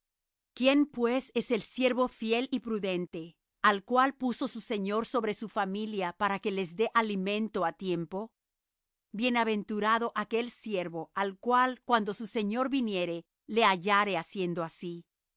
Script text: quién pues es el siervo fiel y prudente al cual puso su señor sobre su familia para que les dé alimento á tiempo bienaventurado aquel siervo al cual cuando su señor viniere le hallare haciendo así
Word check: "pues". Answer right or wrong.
right